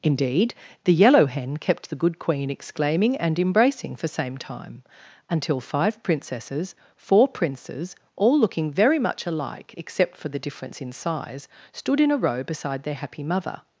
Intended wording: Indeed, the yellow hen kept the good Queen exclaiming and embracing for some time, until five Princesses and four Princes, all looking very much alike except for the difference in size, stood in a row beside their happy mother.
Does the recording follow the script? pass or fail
fail